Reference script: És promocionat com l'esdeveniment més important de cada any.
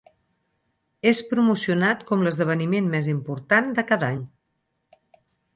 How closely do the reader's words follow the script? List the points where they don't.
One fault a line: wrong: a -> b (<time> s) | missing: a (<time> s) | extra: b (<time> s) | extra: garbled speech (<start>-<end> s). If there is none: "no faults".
no faults